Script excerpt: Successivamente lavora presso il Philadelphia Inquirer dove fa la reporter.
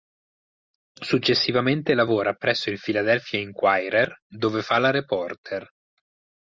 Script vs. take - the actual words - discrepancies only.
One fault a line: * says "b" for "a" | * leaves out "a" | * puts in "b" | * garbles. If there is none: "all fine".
all fine